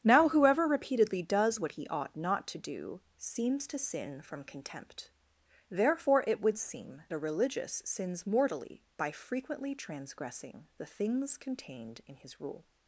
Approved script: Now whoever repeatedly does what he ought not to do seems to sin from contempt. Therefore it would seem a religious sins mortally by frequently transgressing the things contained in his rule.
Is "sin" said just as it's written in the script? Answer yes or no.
yes